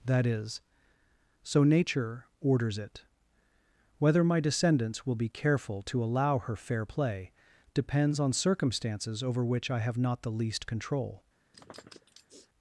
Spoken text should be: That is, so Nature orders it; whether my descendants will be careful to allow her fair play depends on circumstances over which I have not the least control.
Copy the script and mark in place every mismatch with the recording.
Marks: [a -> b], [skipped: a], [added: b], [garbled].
That is, so Nature orders it; whether my descendants will be careful to allow her fair play depends on circumstances over which I have not the least control.